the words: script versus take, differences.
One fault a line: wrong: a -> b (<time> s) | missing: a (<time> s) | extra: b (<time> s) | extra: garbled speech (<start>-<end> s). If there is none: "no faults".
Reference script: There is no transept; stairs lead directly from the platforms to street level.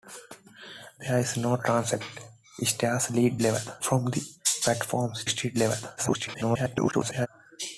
wrong: directly -> level (3.4 s)
missing: to (5.3 s)
extra: garbled speech (6.0-7.3 s)